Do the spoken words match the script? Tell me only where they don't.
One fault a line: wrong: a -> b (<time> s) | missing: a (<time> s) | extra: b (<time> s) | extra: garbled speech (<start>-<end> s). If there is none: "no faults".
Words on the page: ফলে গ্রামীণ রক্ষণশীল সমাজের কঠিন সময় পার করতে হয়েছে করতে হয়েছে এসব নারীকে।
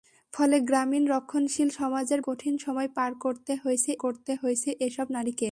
no faults